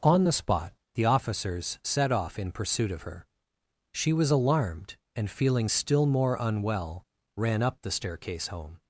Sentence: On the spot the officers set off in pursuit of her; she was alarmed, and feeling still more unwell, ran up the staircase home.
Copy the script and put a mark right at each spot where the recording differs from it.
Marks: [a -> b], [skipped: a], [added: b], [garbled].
On the spot the officers set off in pursuit of her; she was alarmed, and feeling still more unwell, ran up the staircase home.